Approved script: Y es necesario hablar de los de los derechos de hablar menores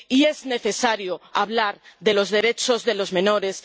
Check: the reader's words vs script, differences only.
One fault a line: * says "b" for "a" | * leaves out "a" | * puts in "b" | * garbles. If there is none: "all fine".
* leaves out "de los"
* says "los" for "hablar"